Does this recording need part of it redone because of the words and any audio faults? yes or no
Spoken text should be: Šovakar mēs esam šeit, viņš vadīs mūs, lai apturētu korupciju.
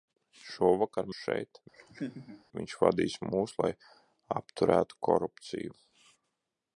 yes